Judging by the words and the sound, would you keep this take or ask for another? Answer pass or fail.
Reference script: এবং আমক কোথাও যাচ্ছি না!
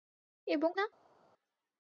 fail